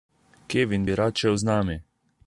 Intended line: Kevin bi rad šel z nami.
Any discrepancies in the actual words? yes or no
no